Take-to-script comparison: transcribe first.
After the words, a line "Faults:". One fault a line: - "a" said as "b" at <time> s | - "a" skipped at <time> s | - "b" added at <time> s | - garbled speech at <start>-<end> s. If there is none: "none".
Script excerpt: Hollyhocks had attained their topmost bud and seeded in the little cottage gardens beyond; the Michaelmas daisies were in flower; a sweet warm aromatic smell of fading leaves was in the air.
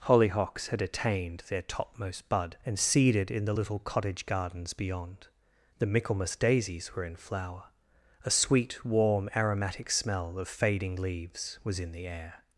Hollyhocks had attained their topmost bud and seeded in the little cottage gardens beyond; the Michaelmas daisies were in flower; a sweet warm aromatic smell of fading leaves was in the air.
Faults:
none